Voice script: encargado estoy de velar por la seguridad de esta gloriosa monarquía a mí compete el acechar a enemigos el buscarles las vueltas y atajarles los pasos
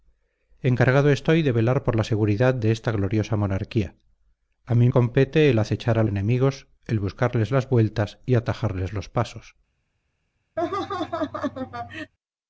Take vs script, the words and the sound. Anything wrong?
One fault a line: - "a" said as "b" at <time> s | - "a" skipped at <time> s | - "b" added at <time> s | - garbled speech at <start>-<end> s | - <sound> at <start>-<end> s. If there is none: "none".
- laugh at 10.6-12.1 s